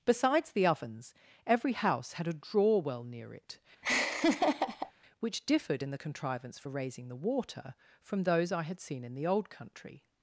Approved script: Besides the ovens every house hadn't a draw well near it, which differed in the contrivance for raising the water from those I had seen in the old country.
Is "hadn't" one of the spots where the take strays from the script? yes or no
yes